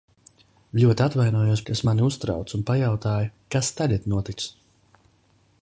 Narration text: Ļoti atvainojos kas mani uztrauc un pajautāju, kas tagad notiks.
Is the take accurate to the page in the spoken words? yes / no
yes